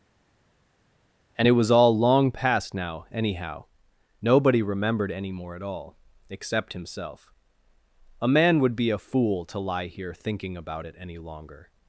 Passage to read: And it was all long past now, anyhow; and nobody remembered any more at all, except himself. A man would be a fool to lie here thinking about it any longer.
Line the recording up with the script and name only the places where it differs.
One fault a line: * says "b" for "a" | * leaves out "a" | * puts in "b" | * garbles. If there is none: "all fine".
* leaves out "and"